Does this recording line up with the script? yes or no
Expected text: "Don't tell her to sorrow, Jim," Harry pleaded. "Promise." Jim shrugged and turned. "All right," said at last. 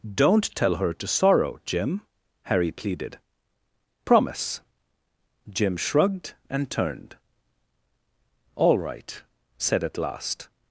yes